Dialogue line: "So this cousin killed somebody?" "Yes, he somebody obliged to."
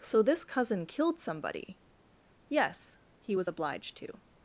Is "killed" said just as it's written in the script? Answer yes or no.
yes